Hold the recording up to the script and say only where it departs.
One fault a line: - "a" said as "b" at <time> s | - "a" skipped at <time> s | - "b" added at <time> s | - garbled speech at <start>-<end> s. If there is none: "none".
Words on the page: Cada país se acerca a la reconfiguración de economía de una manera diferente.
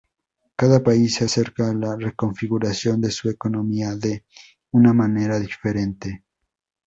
- "su" added at 3.1 s